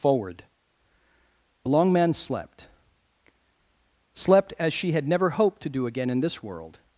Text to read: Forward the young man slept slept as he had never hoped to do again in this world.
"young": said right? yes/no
no